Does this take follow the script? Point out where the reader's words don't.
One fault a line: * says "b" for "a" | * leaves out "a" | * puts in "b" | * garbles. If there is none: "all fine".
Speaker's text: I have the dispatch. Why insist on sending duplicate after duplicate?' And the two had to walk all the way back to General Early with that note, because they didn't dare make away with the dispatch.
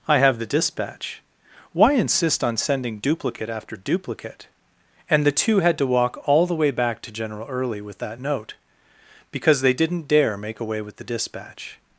all fine